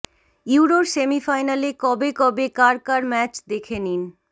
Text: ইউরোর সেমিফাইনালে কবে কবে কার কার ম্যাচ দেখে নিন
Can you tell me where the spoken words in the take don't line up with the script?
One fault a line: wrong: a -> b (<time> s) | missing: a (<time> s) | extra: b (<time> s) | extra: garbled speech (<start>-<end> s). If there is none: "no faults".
no faults